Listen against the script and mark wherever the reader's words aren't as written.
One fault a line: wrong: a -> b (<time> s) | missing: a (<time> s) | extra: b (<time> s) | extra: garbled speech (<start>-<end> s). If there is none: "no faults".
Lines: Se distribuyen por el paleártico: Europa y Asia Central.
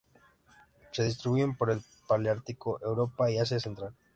no faults